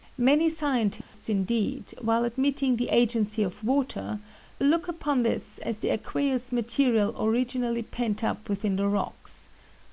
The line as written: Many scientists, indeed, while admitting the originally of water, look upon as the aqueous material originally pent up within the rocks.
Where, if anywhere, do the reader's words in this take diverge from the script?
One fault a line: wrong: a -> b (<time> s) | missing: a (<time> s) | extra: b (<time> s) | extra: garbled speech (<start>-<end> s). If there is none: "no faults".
wrong: originally -> agency (2.9 s)
extra: this (5.2 s)